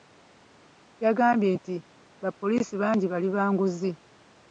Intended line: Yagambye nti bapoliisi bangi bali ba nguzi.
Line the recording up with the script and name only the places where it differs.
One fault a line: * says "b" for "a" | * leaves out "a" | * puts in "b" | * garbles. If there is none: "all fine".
all fine